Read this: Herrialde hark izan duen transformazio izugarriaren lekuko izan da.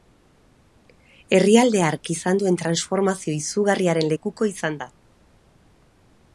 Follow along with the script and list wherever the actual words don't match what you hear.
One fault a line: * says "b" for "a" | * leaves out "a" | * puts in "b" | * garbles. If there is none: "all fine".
all fine